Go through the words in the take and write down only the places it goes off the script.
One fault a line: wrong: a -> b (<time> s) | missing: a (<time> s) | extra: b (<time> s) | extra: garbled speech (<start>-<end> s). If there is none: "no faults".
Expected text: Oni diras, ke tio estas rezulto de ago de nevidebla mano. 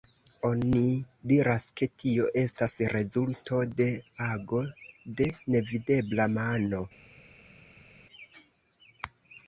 no faults